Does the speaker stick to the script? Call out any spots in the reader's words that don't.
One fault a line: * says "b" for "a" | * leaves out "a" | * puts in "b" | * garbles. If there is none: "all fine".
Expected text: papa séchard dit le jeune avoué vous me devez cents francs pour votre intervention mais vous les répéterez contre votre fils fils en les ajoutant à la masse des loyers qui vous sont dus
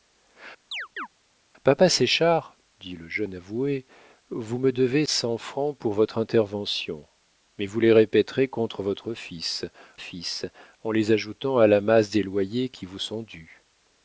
all fine